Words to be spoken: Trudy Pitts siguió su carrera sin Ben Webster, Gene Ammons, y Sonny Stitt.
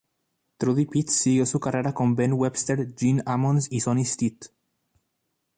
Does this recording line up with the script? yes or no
no